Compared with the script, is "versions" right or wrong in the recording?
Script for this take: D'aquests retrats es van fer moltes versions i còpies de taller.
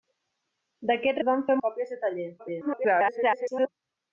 wrong